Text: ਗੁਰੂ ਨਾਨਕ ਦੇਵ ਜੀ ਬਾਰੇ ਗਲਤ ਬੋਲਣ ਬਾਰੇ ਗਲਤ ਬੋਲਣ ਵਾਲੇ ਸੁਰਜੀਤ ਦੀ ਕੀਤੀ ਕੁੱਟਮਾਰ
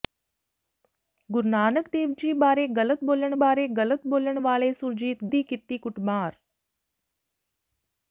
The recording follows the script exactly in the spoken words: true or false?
true